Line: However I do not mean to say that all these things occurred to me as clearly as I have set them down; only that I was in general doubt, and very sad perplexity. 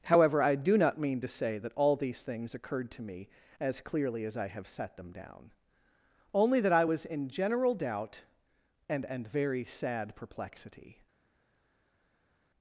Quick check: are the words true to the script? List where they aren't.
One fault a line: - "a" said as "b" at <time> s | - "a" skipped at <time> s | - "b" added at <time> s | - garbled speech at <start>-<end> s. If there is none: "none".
- "and" added at 9.1 s